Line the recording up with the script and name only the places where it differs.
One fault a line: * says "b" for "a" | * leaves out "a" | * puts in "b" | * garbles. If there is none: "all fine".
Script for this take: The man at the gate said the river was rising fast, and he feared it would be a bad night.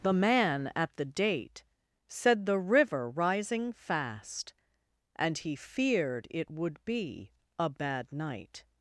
* says "date" for "gate"
* leaves out "was"